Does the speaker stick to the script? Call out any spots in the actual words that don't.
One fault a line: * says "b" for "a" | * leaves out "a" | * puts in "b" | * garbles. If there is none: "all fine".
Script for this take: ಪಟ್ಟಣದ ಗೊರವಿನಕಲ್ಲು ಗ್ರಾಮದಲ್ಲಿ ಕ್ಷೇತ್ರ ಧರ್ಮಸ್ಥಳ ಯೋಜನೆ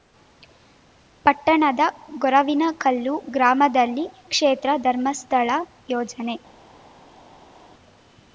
all fine